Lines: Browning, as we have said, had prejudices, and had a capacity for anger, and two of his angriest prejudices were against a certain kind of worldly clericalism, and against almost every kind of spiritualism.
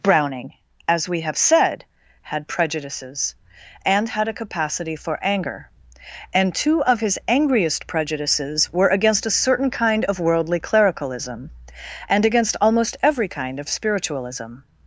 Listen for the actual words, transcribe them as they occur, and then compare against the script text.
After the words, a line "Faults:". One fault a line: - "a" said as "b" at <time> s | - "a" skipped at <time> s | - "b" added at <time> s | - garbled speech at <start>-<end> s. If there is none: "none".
Browning, as we have said, had prejudices, and had a capacity for anger, and two of his angriest prejudices were against a certain kind of worldly clericalism, and against almost every kind of spiritualism.
Faults:
none